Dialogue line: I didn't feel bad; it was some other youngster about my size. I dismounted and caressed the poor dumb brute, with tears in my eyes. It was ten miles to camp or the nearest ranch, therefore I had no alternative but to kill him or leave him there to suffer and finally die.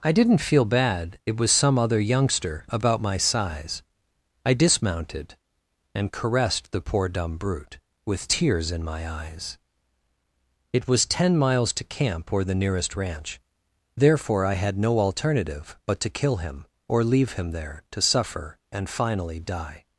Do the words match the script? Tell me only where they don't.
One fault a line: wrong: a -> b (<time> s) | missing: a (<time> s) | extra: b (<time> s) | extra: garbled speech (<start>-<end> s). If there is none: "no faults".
no faults